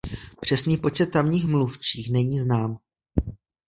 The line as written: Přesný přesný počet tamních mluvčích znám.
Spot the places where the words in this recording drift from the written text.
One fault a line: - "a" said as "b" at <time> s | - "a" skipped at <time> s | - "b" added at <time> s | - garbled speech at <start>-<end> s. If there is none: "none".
- "přesný" skipped at 0.8 s
- "není" added at 2.1 s